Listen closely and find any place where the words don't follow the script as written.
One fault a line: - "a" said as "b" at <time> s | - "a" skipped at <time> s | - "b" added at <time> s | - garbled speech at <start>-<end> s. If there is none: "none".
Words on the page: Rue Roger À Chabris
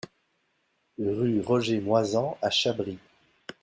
- "Moisan" added at 1.8 s